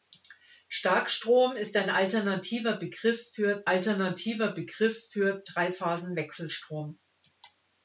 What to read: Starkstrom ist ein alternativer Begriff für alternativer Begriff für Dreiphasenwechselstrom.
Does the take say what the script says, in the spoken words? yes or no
yes